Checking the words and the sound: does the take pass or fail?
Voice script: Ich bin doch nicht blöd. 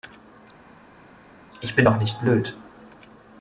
pass